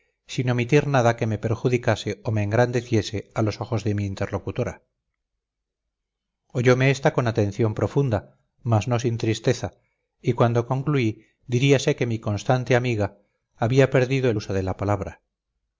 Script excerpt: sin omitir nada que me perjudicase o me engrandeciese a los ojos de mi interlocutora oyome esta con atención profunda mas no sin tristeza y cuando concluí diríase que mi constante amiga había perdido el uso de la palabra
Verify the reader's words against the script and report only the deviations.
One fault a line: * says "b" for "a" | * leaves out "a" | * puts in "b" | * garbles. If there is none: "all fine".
all fine